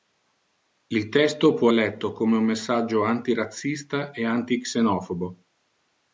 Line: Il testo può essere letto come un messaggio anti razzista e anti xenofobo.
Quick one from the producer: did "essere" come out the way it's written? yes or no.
no